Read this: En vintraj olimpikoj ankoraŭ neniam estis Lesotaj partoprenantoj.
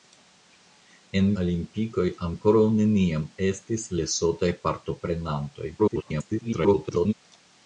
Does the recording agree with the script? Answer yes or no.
no